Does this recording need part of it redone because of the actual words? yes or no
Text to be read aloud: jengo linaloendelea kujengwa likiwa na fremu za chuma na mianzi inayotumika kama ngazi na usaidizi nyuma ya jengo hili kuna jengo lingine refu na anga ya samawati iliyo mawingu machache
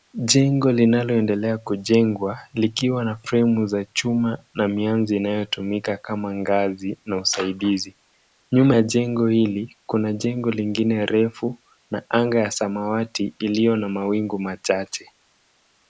yes